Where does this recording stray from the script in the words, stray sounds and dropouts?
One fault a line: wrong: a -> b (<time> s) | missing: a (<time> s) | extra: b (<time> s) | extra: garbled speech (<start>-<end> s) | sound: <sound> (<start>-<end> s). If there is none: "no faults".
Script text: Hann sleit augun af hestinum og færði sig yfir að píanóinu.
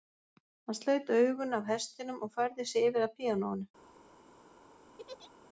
sound: laugh (5.0-5.3 s)